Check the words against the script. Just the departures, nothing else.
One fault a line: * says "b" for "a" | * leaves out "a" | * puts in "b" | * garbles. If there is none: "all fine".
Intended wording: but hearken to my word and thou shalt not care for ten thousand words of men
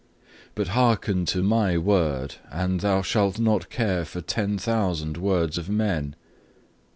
all fine